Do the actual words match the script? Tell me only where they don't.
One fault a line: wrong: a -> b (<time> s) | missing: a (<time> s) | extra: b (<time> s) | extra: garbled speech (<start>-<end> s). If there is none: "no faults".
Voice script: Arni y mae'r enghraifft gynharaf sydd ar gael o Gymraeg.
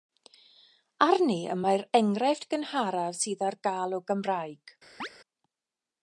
no faults